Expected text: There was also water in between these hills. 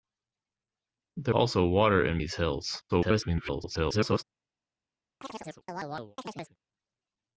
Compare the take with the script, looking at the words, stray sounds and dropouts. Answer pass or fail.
fail